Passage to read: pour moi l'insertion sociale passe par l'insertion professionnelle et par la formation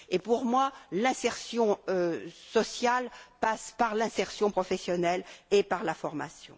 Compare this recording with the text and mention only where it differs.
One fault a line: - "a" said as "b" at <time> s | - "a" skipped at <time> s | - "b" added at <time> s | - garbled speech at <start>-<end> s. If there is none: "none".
none